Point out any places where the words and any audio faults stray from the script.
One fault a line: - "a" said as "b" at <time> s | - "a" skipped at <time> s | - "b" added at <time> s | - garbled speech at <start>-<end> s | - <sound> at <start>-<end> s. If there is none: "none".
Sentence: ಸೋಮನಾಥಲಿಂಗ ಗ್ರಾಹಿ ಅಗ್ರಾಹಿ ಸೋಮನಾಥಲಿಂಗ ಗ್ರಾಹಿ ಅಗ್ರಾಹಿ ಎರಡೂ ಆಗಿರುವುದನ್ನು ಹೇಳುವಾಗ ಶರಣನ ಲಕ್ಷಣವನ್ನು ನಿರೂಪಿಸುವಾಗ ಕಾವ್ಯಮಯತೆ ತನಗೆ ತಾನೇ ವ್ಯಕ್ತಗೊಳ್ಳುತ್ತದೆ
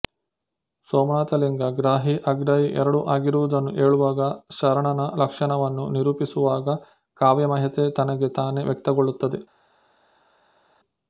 - "ಸೋಮನಾಥಲಿಂಗ ಗ್ರಾಹಿ ಅಗ್ರಾಹಿ" skipped at 2.7 s